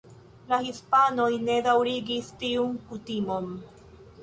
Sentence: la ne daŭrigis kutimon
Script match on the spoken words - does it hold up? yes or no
no